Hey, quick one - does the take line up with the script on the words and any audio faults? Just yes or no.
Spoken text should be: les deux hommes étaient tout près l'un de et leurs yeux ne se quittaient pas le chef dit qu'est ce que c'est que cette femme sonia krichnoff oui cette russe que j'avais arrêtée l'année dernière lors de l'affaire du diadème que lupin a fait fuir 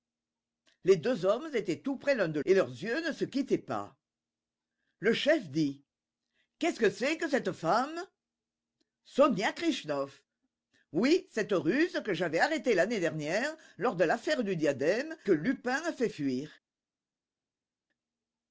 yes